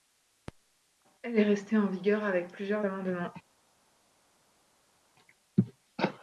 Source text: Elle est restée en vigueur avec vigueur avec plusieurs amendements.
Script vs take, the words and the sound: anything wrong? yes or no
yes